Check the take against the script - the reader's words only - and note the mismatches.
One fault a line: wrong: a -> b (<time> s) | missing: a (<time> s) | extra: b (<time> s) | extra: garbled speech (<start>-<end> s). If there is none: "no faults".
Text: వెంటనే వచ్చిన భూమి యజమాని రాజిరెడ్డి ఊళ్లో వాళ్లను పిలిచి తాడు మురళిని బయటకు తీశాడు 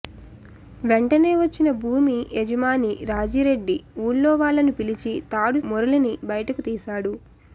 no faults